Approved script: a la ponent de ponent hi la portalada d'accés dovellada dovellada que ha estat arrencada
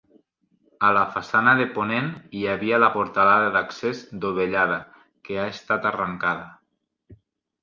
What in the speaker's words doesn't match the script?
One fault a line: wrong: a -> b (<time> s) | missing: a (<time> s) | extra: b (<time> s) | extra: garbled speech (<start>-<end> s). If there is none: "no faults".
wrong: ponent -> façana (1.2 s)
extra: havia (2.5 s)
missing: dovellada (4.8 s)